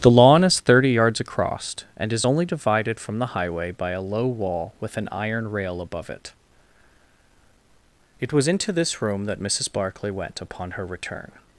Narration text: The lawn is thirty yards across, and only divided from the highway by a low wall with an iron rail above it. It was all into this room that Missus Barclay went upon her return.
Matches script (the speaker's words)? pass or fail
fail